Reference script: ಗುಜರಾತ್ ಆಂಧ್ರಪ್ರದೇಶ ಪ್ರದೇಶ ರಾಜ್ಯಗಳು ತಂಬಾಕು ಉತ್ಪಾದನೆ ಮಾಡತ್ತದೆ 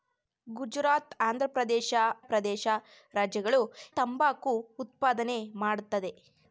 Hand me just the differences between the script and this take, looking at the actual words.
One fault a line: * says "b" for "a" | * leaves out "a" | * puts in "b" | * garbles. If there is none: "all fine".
all fine